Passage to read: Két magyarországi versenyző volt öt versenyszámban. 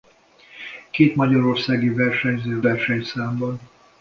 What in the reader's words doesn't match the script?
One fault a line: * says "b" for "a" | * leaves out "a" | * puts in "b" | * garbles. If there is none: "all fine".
* leaves out "volt öt"